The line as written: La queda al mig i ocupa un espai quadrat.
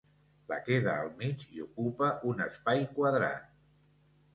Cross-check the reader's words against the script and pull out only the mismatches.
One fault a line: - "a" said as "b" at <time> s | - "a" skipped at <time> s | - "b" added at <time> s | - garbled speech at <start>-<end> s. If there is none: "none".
none